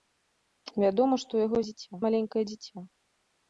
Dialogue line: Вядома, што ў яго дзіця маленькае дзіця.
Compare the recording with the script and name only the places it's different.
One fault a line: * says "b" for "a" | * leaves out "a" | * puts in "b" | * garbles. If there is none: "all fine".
all fine